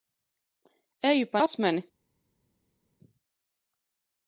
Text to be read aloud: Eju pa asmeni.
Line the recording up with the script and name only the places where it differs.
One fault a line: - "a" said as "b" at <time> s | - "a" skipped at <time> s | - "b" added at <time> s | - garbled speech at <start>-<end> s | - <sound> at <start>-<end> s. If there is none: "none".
none